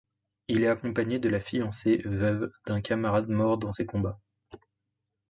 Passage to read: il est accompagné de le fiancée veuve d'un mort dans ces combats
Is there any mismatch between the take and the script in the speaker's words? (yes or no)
yes